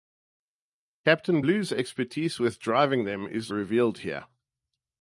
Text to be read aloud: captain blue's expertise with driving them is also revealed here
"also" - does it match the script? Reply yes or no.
no